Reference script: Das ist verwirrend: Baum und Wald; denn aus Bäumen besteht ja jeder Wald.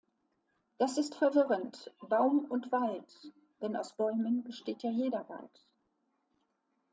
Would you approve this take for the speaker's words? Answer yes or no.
yes